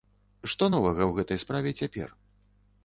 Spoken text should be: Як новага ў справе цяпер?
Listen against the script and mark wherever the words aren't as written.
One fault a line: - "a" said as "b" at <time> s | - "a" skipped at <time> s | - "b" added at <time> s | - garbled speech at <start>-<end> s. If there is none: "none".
- "Як" said as "Што" at 0.5 s
- "гэтай" added at 1.2 s